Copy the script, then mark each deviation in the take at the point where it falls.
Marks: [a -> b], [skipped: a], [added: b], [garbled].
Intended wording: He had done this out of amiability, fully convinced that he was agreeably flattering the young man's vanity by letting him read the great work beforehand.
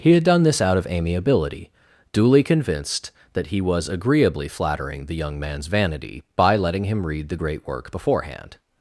He had done this out of amiability, [fully -> duly] convinced that he was agreeably flattering the young man's vanity by letting him read the great work beforehand.